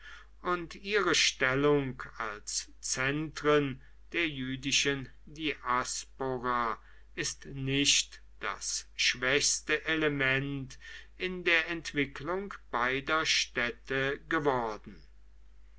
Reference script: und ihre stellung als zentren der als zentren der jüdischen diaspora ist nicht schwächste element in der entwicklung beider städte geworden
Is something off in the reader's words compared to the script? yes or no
yes